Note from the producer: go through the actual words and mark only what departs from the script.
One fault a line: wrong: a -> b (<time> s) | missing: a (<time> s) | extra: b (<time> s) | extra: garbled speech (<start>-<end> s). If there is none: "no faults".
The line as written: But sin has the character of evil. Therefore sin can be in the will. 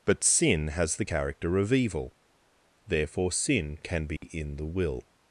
no faults